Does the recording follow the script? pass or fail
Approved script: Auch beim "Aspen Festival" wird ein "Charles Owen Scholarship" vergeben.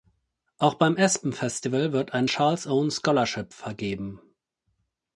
pass